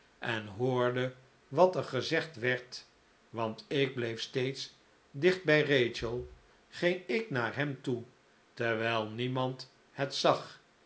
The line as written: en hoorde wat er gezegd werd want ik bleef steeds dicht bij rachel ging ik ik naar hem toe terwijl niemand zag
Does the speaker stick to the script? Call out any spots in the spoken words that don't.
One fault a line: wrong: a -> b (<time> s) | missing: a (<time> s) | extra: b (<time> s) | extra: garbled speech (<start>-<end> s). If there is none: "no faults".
missing: ik (7.3 s)
extra: het (9.9 s)